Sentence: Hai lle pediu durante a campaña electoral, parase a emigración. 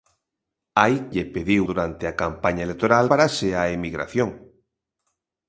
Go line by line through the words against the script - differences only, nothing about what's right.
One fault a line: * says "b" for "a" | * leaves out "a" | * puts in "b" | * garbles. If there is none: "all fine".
all fine